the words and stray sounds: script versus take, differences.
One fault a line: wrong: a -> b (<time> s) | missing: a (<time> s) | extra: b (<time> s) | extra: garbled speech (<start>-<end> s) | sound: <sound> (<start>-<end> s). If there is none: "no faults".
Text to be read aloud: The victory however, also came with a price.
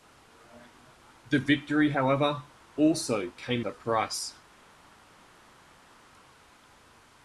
missing: with (3.6 s)